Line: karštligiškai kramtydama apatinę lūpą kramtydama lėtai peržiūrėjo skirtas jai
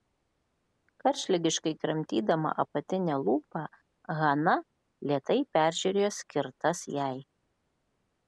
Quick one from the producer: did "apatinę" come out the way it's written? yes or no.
yes